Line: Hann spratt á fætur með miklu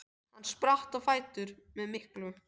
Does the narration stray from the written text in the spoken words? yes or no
no